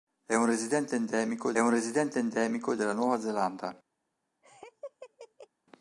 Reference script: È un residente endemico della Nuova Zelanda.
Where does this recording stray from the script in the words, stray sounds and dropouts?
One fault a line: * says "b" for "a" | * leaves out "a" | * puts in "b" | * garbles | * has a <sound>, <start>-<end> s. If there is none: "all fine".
* puts in "un residente endemico"
* has a laugh, 4.4-5.5 s